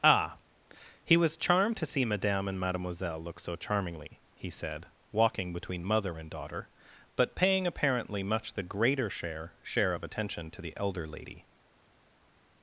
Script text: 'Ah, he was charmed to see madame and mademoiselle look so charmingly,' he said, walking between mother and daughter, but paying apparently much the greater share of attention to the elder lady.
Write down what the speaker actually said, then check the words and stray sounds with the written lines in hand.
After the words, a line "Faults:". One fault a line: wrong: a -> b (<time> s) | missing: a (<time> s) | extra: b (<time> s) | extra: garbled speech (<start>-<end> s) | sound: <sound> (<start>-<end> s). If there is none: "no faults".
'Ah, he was charmed to see madame and mademoiselle look so charmingly,' he said, walking between mother and daughter, but paying apparently much the greater share share of attention to the elder lady.
Faults:
extra: share (9.6 s)